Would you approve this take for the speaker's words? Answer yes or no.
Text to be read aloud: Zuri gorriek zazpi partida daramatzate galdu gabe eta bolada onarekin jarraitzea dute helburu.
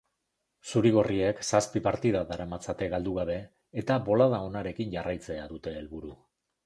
yes